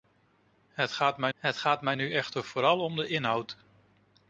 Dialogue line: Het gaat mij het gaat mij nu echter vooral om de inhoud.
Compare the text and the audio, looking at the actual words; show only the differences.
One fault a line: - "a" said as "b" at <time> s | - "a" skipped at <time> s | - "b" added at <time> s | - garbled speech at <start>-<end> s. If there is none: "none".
none